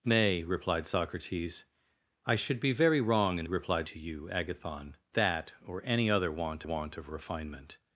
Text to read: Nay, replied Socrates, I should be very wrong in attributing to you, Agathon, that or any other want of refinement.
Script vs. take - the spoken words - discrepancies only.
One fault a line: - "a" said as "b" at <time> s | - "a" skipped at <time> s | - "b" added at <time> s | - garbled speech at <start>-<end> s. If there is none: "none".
- "attributing" said as "replied" at 3.4 s
- "want" added at 6.6 s